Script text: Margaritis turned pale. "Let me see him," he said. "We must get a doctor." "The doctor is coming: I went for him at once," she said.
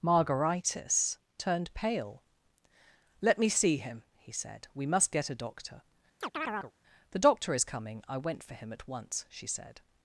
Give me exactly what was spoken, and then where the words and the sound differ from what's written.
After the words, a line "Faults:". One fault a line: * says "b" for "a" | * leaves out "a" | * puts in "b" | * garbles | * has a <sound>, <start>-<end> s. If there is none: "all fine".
Margaritis turned pale. "Let me see him," he said. "We must get a doctor." "The doctor is coming: I went for him at once," she said.
Faults:
* has a chirp, 6.2-6.7 s